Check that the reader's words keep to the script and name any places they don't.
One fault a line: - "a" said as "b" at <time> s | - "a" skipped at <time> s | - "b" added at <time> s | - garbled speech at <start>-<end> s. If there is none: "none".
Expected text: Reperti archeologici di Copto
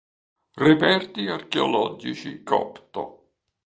- "di" skipped at 2.5 s